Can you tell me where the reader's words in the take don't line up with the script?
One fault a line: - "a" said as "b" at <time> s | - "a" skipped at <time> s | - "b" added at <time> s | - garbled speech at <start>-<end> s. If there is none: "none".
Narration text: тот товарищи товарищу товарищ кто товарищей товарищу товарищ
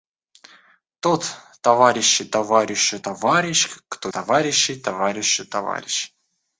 none